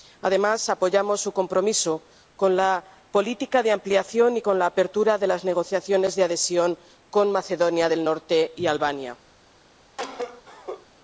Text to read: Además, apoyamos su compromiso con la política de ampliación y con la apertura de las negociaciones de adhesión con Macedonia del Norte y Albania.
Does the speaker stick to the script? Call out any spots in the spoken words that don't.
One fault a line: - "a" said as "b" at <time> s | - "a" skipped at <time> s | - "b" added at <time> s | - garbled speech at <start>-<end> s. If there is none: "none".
none